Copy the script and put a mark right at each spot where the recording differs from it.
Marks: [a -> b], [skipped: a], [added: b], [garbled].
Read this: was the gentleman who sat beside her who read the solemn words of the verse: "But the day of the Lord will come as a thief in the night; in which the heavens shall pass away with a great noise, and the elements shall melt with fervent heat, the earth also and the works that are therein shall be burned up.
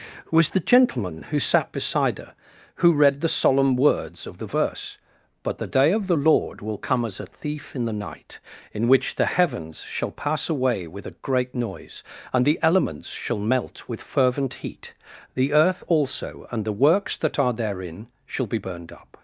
was the gentleman who sat beside her who read the solemn words of the verse: "But the day of the Lord will come as a thief in the night; in which the heavens shall pass away with a great noise, and the elements shall melt with fervent heat, the earth also and the works that are therein shall be burned up.